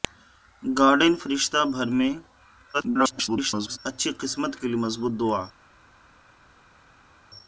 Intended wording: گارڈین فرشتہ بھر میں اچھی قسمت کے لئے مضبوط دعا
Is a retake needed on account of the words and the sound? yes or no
yes